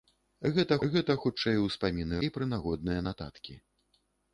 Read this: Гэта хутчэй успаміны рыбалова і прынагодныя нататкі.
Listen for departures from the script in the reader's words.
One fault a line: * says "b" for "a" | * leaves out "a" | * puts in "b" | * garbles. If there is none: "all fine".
* puts in "гэта"
* leaves out "рыбалова"